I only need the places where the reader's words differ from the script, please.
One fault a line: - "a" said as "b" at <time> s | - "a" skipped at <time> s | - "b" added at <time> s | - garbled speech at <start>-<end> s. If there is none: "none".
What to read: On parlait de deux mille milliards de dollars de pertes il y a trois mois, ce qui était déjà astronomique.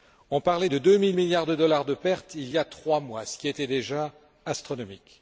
none